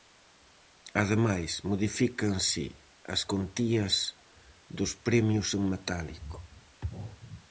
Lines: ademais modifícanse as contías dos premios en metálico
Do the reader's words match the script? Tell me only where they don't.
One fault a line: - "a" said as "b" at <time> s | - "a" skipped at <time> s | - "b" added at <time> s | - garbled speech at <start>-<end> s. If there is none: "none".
none